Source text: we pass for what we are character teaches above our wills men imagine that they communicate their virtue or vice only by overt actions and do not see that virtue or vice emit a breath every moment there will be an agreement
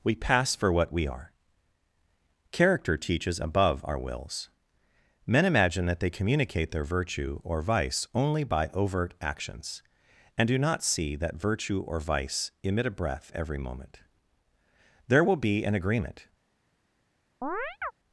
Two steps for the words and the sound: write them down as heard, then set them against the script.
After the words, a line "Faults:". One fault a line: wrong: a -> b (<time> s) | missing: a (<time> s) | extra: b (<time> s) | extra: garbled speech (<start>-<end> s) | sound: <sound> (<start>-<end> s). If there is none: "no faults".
we pass for what we are character teaches above our wills men imagine that they communicate their virtue or vice only by overt actions and do not see that virtue or vice emit a breath every moment there will be an agreement
Faults:
sound: chirp (17.4-17.9 s)